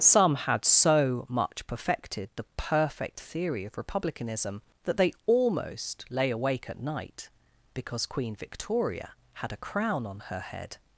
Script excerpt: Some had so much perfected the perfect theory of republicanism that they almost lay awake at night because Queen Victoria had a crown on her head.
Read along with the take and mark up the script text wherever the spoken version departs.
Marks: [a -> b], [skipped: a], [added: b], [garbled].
Some had so much perfected the perfect theory of republicanism that they almost lay awake at night because Queen Victoria had a crown on her head.